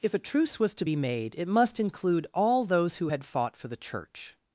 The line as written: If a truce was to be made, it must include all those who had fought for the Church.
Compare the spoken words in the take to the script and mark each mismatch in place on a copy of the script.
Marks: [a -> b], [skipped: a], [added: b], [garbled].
If a truce was to be made, it must include all those who had fought for the Church.